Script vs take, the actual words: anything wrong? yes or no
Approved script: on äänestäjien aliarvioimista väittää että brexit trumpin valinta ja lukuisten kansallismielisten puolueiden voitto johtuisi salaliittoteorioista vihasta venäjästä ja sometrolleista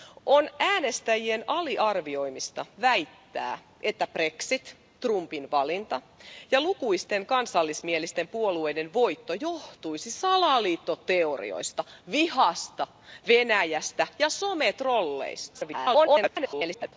yes